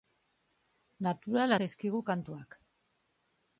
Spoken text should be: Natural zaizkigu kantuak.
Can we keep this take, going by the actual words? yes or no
yes